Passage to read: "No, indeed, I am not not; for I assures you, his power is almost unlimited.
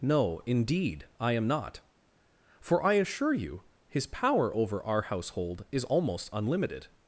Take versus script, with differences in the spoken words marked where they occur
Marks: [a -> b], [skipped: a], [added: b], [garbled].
"No, indeed, I am not [skipped: not;] for I [assures -> assure] you, his power [added: over our household] is almost unlimited.